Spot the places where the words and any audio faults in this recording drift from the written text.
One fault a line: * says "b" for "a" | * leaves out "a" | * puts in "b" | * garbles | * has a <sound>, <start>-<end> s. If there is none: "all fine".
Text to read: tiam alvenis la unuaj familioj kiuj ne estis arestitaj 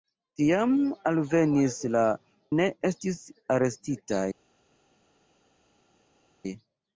* leaves out "unuaj familioj kiuj"